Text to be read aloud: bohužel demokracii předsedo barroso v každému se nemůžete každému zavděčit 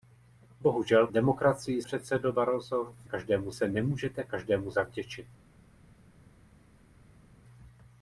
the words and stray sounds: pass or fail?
pass